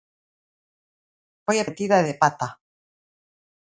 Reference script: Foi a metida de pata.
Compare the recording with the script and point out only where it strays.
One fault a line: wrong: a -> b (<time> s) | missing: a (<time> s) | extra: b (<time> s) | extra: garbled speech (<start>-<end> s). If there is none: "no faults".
no faults